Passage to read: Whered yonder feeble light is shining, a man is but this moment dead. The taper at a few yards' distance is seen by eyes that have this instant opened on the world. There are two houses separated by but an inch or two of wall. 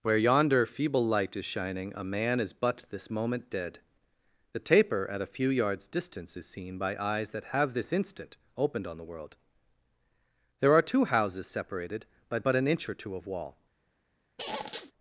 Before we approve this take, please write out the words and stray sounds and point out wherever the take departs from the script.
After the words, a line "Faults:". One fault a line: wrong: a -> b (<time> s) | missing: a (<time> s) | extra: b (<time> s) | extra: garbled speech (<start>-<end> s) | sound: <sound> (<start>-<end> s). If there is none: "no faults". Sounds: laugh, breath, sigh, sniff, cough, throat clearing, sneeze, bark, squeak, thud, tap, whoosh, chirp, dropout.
Where yonder feeble light is shining, a man is but this moment dead. The taper at a few yards' distance is seen by eyes that have this instant opened on the world. There are two houses separated by but an inch or two of wall.
Faults:
wrong: Whered -> Where (0.0 s)
sound: squeak (14.4-14.9 s)